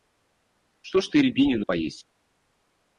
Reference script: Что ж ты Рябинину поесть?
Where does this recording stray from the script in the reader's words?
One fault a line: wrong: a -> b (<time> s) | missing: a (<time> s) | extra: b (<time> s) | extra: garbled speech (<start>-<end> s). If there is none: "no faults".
no faults